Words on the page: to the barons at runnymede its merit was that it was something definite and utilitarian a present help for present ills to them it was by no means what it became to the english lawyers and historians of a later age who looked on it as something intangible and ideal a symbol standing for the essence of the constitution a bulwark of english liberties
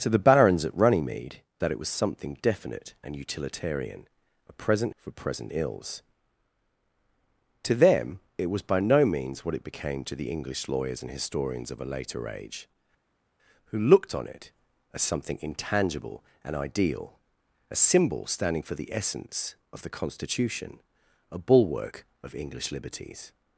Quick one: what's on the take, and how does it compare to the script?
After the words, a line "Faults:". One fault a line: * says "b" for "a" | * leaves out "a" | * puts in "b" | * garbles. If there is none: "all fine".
to the barons at runnymede that it was something definite and utilitarian a present for present ills to them it was by no means what it became to the english lawyers and historians of a later age who looked on it as something intangible and ideal a symbol standing for the essence of the constitution a bulwark of english liberties
Faults:
* leaves out "its merit was"
* leaves out "help"